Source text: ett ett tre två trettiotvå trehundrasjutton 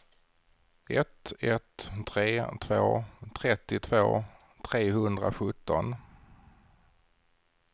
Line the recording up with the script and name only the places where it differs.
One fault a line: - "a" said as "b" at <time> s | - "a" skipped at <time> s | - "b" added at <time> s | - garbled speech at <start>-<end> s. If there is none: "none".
none